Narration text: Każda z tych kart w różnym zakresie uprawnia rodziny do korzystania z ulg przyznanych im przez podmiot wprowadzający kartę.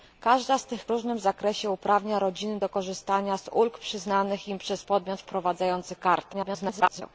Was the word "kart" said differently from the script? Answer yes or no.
yes